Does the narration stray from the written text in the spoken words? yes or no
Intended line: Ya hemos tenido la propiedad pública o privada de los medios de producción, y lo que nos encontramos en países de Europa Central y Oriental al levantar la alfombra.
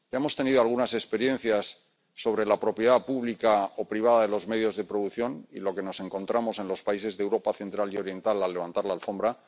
yes